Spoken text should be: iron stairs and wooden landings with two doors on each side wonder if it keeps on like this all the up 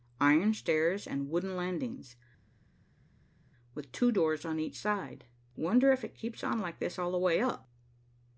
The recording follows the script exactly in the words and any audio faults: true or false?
false